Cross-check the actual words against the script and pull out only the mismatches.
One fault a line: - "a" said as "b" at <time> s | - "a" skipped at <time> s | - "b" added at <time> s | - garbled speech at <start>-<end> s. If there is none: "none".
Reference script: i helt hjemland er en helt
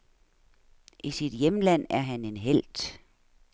- "helt" said as "sit" at 1.1 s
- "han" added at 2.0 s